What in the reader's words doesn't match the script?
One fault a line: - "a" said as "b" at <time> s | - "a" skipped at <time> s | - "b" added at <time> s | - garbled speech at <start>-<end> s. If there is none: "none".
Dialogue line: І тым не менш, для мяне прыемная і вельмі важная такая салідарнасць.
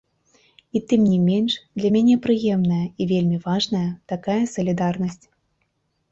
none